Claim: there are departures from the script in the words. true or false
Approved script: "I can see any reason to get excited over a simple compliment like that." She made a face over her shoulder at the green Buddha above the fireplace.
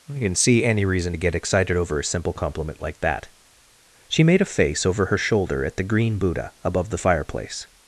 false